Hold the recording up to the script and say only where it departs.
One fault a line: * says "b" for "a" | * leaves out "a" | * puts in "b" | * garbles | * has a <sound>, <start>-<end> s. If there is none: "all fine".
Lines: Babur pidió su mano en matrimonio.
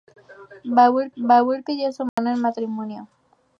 * puts in "babur"
* has a dropout, 2.1-2.2 s